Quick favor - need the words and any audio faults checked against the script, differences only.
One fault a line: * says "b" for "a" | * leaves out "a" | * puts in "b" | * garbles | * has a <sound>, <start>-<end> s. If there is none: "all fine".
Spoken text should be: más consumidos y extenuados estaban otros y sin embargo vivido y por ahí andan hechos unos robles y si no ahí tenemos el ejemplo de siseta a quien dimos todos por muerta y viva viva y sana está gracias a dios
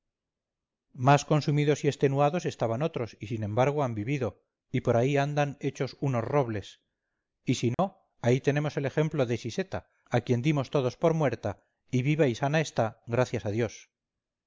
* puts in "han"
* has a dropout, 7.7-7.8 s
* leaves out "viva"